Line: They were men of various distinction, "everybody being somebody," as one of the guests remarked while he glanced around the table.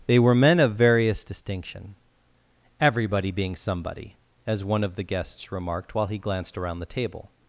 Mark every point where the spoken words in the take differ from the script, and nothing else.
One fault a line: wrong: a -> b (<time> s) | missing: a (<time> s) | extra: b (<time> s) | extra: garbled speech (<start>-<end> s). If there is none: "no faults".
no faults